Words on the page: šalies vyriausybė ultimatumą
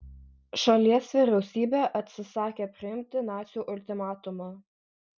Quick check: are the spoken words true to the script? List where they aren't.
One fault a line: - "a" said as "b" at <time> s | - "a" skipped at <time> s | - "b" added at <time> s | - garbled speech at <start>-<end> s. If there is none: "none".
- "atsisakė priimti nacių" added at 2.0 s